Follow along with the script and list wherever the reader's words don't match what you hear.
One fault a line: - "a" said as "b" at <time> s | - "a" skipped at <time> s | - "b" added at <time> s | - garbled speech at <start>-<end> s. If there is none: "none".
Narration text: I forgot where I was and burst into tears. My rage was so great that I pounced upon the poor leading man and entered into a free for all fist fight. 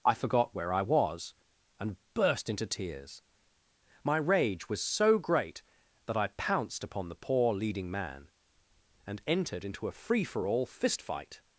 none